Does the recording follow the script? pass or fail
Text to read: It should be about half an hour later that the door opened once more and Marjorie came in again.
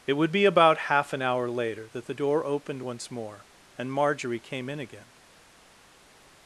fail